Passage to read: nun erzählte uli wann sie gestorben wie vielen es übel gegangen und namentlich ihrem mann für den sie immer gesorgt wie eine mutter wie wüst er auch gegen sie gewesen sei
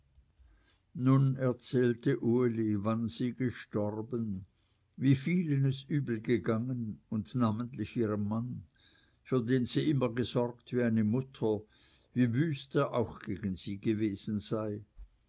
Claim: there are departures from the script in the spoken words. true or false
false